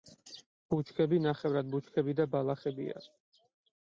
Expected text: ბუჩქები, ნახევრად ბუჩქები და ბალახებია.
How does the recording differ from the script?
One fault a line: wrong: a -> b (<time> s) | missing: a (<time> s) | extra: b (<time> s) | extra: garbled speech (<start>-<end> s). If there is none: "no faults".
no faults